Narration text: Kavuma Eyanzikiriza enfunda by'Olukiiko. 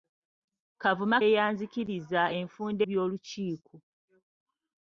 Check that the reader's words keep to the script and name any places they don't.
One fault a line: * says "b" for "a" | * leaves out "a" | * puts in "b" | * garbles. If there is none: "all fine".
all fine